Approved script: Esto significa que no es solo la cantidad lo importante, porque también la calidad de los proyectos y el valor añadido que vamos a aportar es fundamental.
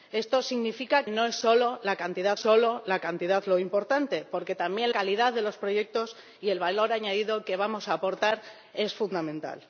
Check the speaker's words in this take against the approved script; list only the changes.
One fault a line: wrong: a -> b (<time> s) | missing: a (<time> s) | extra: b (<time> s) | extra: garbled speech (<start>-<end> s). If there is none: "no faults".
missing: que (1.1 s)
extra: solo la cantidad (2.4 s)
missing: la (4.9 s)